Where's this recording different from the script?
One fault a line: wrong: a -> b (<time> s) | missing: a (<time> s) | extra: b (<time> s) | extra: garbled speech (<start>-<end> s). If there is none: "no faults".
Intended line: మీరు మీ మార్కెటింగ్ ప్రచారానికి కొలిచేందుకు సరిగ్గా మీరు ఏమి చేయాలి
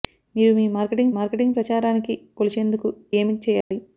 extra: మార్కెటింగ్ (1.2 s)
missing: సరిగ్గా మీరు (2.9 s)